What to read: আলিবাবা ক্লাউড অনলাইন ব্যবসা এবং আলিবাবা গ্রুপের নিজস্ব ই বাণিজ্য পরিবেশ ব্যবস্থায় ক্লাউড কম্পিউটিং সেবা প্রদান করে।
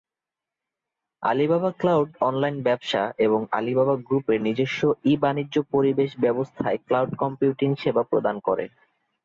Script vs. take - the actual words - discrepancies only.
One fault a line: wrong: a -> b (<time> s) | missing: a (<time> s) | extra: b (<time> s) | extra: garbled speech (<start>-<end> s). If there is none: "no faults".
no faults